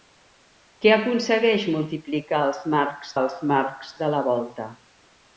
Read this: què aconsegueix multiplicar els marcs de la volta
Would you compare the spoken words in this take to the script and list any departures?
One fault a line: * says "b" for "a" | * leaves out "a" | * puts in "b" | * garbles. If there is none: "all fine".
* puts in "els marcs"